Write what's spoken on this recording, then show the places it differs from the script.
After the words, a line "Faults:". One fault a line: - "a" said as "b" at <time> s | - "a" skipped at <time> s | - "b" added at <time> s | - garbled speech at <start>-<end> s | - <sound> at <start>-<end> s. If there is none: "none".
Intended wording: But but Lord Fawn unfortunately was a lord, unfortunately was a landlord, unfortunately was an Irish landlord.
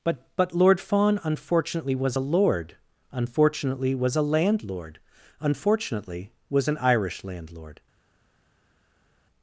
But but Lord Fawn unfortunately was a lord, unfortunately was a landlord, unfortunately was an Irish landlord.
Faults:
none